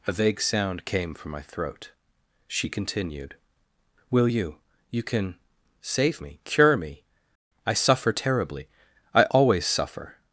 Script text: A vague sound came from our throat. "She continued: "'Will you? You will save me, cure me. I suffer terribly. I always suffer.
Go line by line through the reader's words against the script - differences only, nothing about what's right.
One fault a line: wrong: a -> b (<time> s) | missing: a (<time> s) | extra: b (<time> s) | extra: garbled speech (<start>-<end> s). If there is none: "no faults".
wrong: our -> my (1.3 s)
wrong: will -> can (5.0 s)